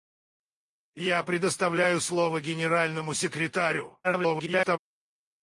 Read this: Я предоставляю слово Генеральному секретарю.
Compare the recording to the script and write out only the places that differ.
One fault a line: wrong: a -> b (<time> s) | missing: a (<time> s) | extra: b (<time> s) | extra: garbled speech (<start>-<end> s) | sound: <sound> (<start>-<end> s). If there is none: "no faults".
extra: garbled speech (4.0-4.8 s)